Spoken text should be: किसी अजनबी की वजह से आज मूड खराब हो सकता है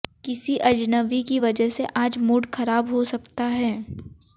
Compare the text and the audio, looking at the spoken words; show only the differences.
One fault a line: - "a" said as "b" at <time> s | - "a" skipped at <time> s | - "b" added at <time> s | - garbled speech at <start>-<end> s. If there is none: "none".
none